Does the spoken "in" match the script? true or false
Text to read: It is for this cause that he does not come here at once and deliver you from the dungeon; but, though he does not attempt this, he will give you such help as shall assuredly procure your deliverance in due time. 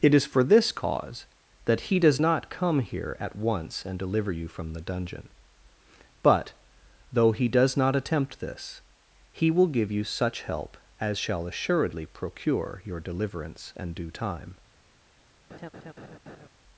false